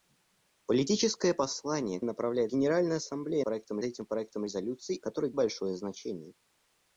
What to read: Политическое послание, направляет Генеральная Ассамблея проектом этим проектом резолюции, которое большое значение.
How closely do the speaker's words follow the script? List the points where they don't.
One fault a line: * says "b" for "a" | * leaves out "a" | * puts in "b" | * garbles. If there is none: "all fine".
all fine